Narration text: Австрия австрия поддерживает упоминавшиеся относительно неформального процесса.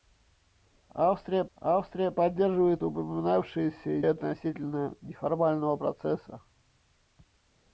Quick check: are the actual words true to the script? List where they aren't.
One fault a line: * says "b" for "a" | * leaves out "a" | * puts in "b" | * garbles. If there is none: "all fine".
all fine